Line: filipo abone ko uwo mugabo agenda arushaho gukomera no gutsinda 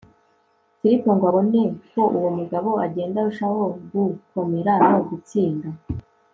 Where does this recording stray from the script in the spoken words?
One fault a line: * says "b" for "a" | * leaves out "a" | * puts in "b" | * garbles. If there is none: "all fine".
* puts in "ngo"